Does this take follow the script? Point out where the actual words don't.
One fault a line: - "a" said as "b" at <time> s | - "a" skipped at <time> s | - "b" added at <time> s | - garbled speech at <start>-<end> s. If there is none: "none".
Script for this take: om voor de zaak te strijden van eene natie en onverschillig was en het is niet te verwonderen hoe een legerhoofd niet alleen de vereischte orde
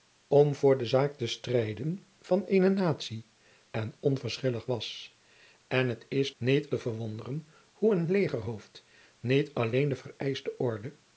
none